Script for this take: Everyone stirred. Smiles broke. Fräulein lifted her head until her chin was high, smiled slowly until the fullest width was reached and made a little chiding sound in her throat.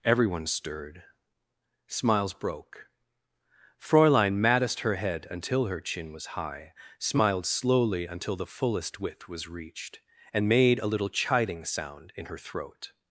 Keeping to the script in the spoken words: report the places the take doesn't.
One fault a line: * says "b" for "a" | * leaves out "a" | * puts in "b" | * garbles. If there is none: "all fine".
* says "maddest" for "lifted"